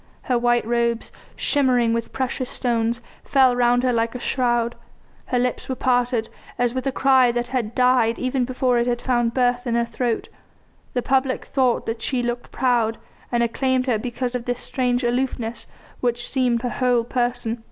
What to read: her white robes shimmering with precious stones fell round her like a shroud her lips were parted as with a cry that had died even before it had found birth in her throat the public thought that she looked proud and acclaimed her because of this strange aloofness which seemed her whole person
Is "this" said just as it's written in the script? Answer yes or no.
yes